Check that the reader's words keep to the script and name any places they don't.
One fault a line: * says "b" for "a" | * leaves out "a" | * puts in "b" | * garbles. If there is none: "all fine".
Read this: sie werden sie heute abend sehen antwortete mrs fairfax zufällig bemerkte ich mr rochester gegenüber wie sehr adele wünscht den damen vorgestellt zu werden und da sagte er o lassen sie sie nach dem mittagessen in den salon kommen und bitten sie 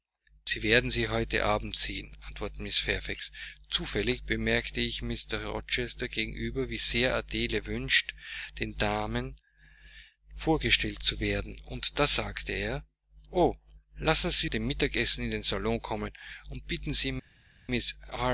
* leaves out "sie nach"